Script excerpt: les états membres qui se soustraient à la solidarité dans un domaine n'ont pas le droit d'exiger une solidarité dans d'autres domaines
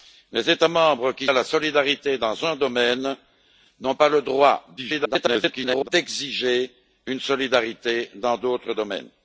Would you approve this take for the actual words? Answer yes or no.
no